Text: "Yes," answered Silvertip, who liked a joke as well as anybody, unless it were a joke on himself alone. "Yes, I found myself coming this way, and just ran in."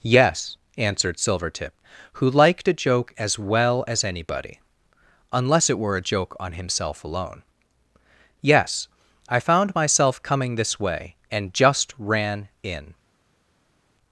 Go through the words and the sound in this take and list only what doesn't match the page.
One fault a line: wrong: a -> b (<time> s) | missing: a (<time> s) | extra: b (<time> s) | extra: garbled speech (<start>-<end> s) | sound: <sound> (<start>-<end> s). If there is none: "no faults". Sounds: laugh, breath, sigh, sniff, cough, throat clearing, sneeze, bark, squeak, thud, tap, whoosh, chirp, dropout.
no faults